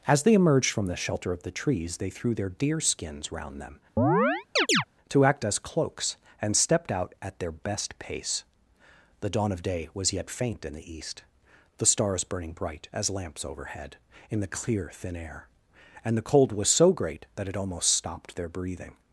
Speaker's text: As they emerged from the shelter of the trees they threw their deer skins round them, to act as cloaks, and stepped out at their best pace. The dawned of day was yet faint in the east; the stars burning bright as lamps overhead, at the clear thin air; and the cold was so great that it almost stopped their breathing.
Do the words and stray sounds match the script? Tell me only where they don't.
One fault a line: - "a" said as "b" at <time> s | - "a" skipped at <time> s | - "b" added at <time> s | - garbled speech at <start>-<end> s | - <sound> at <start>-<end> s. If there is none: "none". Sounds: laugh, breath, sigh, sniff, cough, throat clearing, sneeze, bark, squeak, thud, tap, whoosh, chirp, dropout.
- chirp at 4.0-4.8 s
- "dawned" said as "dawn" at 9.3 s
- "at" said as "in" at 14.3 s